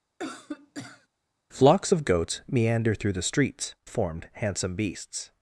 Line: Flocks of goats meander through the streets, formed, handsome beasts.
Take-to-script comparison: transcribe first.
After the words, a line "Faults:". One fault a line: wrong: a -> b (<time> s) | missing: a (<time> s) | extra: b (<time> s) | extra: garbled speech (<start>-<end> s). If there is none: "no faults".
Flocks of goats meander through the streets, formed, handsome beasts.
Faults:
no faults